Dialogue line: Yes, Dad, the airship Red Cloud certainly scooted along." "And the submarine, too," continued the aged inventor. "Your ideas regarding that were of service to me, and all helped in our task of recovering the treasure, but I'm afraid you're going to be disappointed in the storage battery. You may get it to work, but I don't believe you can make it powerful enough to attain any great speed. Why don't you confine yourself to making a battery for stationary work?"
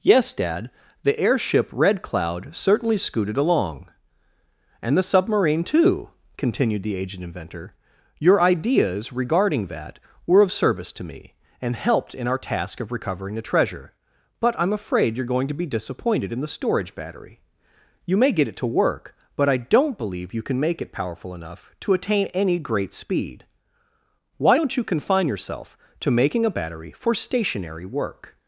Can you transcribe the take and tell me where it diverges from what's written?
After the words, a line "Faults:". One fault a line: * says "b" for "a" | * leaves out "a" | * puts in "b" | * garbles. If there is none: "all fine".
Yes, Dad, the airship Red Cloud certainly scooted along." "And the submarine, too," continued the aged inventor. "Your ideas regarding that were of service to me, and helped in our task of recovering the treasure, but I'm afraid you're going to be disappointed in the storage battery. You may get it to work, but I don't believe you can make it powerful enough to attain any great speed. Why don't you confine yourself to making a battery for stationary work?"
Faults:
* leaves out "all"